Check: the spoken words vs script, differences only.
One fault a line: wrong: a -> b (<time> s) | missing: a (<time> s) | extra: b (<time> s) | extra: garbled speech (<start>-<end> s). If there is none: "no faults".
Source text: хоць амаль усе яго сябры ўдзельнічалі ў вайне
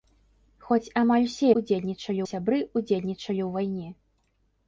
wrong: яго -> ўдзельнічалі (1.6 s)